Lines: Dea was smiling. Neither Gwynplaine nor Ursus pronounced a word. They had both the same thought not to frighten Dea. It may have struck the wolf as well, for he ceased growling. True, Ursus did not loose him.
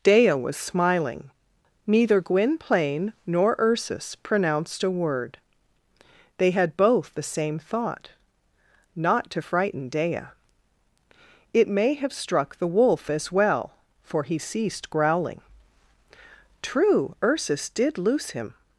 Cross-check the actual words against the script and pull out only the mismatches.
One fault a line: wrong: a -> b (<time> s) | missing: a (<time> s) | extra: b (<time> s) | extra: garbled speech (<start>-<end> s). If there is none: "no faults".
missing: not (18.0 s)